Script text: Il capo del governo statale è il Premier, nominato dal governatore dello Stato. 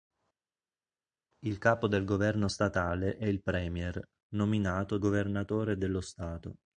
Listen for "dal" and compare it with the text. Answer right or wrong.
wrong